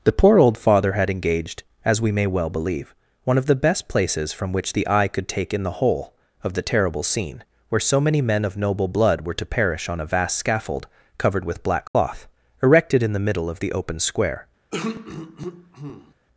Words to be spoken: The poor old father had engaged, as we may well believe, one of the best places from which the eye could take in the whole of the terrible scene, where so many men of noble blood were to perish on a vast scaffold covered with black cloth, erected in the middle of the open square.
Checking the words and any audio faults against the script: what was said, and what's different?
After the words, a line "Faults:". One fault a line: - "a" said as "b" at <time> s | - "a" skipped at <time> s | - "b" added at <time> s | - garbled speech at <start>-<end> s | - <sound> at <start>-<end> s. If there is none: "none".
The poor old father had engaged, as we may well believe, one of the best places from which the eye could take in the whole of the terrible scene, where so many men of noble blood were to perish on a vast scaffold covered with black cloth, erected in the middle of the open square.
Faults:
- dropout at 11.9-11.9 s
- throat clearing at 14.7-16.1 s